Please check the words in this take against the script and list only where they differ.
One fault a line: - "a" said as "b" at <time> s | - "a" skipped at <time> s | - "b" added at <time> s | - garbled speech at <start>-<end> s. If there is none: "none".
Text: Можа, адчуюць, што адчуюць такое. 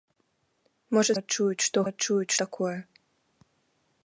none